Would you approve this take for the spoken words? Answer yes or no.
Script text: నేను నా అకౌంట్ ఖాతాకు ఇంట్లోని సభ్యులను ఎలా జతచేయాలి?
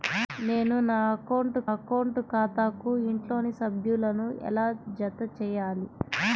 no